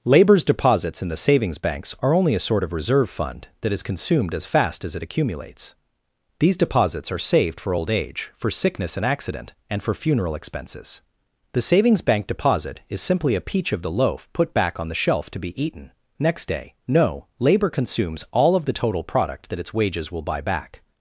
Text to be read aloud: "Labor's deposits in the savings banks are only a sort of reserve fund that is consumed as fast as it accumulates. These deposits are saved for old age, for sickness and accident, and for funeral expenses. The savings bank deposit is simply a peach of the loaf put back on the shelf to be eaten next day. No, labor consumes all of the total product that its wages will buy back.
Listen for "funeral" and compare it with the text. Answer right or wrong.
right